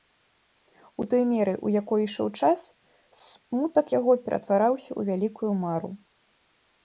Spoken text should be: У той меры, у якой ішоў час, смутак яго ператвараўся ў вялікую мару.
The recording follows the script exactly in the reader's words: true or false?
true